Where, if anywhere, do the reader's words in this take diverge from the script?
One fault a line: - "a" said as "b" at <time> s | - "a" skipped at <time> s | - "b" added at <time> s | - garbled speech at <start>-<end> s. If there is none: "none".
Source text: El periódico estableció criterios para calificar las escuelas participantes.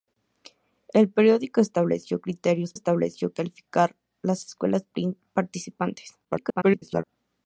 - "para" said as "estableció" at 2.7 s
- garbled speech at 6.2-7.0 s